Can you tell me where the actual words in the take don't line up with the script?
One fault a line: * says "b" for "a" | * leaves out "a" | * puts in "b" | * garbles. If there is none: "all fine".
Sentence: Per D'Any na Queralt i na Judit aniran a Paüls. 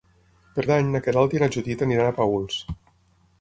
all fine